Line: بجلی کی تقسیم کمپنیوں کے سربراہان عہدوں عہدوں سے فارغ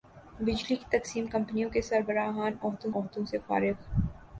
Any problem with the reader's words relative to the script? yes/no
no